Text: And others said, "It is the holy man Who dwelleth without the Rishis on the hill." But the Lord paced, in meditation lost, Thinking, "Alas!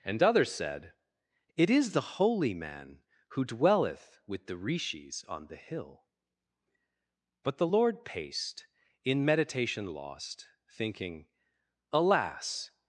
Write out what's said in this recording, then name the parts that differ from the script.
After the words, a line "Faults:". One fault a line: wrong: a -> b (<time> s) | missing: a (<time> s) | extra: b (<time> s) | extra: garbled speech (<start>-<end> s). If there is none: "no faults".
And others said, "It is the holy man Who dwelleth with the Rishis on the hill." But the Lord paced, in meditation lost, Thinking, "Alas!
Faults:
wrong: without -> with (4.3 s)